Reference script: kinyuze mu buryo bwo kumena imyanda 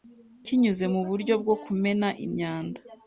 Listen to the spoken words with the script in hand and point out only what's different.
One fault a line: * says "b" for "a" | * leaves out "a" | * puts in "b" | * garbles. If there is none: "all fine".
all fine